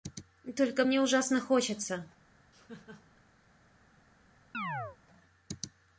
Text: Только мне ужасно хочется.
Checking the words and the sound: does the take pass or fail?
fail